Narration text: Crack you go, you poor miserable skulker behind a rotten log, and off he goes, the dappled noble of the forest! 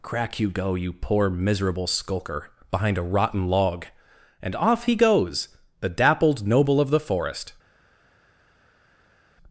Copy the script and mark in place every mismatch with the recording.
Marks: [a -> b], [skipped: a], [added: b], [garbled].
Crack you go, you poor miserable skulker behind a rotten log, and off he goes, the dappled noble of the forest!